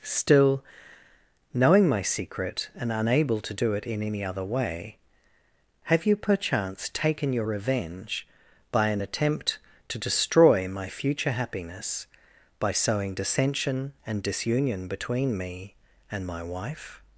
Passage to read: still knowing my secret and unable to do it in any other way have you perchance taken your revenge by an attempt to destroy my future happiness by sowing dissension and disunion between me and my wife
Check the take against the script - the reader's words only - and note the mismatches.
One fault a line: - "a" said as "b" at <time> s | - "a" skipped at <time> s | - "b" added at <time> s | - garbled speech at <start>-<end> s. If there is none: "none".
none